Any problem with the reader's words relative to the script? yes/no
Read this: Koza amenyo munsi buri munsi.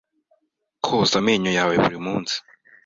yes